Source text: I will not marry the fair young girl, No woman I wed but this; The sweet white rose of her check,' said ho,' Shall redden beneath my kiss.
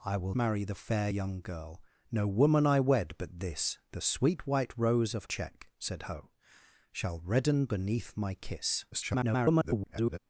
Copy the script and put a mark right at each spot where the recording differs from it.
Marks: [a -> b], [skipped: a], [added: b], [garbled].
I will [skipped: not] marry the fair young girl, No woman I wed but this; The sweet white rose of [skipped: her] check,' said ho,' Shall redden beneath my kiss. [garbled]